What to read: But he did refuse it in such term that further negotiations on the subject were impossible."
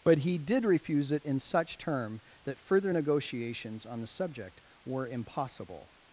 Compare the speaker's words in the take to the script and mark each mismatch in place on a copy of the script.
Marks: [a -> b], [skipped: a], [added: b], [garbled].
But he did refuse it in such term that further negotiations on the subject were impossible."